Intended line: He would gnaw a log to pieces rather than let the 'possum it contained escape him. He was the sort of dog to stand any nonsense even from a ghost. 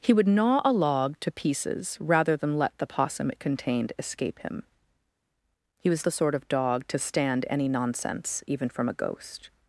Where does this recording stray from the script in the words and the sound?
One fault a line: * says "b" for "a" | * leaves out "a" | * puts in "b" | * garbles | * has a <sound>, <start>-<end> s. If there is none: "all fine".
all fine